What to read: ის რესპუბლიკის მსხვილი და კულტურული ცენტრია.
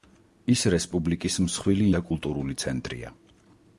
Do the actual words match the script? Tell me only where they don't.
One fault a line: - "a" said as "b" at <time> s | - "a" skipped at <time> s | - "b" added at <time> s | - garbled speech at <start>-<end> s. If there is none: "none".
none